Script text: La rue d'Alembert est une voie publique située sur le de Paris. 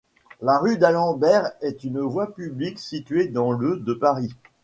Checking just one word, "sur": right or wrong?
wrong